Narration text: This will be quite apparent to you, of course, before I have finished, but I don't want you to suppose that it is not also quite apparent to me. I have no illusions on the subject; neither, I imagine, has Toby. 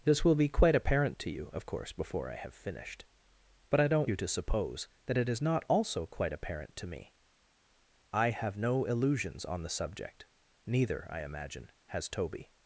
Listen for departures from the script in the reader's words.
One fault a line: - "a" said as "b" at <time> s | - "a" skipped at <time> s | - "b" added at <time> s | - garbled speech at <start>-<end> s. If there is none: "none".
- "want" skipped at 4.1 s